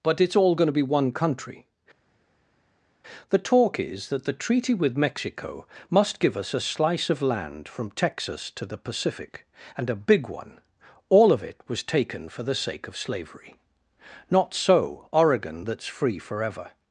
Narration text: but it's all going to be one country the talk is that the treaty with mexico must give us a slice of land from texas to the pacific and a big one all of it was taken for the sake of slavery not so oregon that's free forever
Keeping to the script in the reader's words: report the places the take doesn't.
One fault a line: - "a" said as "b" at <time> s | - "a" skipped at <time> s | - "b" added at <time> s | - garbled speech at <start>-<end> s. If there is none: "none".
none